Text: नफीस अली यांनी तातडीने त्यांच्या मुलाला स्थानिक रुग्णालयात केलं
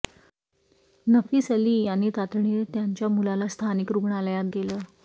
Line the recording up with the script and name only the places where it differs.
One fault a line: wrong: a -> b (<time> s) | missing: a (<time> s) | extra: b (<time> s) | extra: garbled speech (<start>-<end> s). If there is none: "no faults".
no faults